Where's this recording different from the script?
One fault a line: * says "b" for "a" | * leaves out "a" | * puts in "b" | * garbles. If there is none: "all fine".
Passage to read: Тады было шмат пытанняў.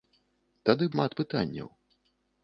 * leaves out "было"